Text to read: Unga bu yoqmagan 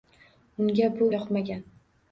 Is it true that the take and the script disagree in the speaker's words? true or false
false